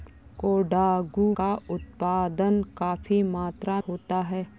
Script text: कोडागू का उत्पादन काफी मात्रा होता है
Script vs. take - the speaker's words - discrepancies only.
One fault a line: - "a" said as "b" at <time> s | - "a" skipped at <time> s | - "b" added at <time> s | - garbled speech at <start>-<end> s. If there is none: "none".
none